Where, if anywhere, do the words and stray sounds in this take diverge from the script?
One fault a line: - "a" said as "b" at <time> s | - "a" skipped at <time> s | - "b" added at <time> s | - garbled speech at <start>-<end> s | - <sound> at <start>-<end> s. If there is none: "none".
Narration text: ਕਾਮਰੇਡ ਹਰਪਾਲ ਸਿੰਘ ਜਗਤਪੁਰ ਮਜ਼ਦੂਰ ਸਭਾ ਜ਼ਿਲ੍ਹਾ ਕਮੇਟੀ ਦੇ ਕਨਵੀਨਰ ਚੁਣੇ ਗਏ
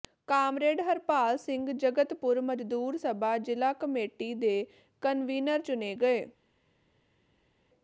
none